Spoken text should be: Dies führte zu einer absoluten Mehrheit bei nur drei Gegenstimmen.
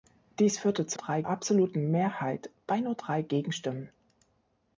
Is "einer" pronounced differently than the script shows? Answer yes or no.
yes